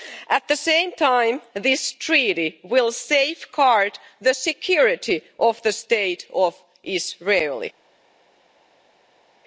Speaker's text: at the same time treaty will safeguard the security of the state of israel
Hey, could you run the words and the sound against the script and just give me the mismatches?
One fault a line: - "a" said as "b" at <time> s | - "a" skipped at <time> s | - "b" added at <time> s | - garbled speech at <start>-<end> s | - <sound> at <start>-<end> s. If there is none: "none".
- "this" added at 1.5 s